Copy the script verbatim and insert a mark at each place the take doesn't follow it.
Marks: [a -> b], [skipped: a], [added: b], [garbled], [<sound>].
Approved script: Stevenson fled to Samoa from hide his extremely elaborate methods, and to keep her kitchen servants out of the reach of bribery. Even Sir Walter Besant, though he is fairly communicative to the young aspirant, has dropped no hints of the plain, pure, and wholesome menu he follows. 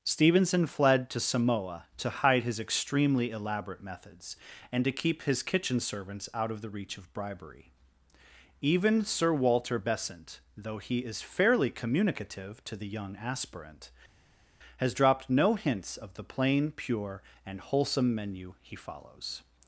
Stevenson fled to Samoa [from -> to] hide his extremely elaborate methods, and to keep [her -> his] kitchen servants out of the reach of bribery. Even Sir Walter Besant, though he is fairly communicative to the young aspirant, has dropped no hints of the plain, pure, and wholesome menu he follows.